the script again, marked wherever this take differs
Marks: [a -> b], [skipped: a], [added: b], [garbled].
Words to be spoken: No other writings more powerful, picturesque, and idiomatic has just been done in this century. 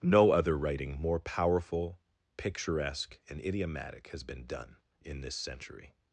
No other [writings -> writing] more powerful, picturesque, and idiomatic has [skipped: just] been done in this century.